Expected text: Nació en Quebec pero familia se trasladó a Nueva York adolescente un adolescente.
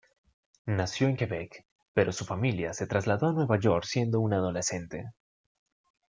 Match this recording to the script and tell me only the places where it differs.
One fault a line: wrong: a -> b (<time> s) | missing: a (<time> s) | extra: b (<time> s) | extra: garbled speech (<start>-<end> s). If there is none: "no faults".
extra: su (2.1 s)
wrong: adolescente -> siendo (3.8 s)